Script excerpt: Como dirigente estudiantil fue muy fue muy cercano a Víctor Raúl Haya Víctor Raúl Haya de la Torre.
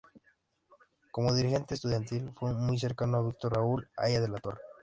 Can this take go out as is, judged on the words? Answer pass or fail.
fail